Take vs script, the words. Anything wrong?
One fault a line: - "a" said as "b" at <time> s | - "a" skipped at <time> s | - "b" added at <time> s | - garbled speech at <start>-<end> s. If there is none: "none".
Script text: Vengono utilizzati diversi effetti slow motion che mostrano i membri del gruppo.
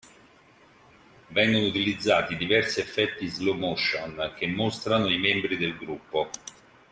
none